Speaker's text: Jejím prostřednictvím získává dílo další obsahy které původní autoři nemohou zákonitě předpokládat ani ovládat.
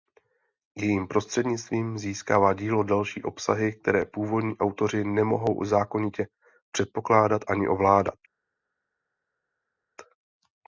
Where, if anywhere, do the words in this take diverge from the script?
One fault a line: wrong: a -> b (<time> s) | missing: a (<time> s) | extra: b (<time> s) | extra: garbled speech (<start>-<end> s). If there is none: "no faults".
no faults